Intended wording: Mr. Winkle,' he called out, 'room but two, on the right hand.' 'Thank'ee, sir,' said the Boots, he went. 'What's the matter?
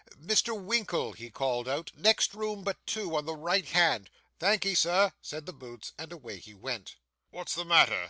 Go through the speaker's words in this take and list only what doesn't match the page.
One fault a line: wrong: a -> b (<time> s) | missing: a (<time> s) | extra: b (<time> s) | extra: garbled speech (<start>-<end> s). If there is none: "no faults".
extra: next (1.9 s)
extra: and away (6.0 s)